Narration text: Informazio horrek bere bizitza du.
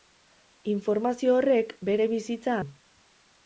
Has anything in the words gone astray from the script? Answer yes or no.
no